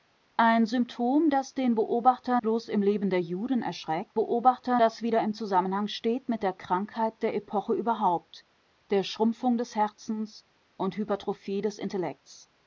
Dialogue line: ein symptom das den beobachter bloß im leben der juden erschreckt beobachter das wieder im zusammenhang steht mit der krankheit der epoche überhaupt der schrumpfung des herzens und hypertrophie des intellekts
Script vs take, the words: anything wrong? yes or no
no